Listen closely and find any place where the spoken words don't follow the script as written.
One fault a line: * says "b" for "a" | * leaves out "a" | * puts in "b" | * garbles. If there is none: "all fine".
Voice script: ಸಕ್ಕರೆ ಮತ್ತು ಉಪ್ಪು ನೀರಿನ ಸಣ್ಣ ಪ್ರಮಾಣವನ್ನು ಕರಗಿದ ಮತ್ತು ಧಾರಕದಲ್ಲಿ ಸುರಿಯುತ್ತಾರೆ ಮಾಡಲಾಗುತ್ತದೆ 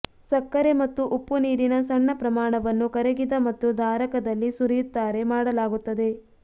all fine